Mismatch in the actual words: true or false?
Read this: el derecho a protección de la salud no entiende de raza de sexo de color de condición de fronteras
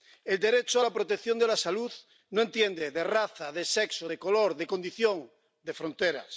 true